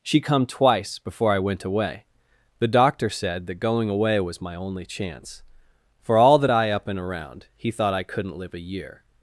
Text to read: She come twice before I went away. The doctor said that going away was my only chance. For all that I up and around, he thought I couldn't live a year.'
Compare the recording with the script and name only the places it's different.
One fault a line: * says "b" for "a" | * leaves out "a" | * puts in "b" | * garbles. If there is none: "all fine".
all fine